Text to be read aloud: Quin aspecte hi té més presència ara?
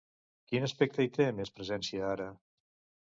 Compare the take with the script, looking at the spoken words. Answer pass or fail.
pass